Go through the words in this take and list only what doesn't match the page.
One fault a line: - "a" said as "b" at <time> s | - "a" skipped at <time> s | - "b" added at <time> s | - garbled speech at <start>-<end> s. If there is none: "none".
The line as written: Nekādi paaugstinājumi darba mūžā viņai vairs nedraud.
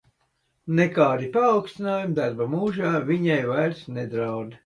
none